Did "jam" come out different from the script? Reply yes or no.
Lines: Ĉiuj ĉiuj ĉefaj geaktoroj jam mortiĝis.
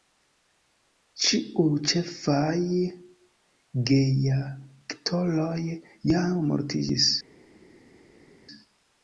no